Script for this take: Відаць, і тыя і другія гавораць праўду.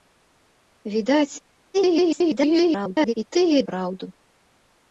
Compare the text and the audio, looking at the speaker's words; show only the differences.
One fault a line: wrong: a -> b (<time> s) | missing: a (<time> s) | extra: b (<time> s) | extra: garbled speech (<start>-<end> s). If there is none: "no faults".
extra: garbled speech (1.7-3.1 s)
missing: другія гавораць (3.6 s)